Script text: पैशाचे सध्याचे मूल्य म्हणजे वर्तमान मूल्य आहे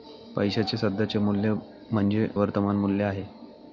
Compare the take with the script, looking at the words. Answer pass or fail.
pass